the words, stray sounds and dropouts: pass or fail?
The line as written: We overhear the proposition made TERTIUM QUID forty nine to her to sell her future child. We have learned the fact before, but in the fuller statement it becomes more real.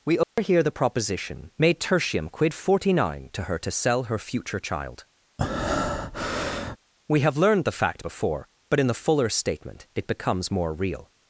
fail